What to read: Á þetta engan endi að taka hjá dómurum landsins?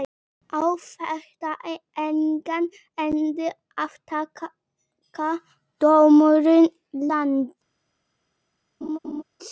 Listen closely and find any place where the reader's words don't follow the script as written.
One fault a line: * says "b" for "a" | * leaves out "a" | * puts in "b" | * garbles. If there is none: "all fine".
* leaves out "hjá"